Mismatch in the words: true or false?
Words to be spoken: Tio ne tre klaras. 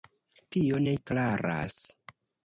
true